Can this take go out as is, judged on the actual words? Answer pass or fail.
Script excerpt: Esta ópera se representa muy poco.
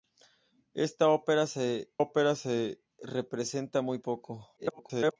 fail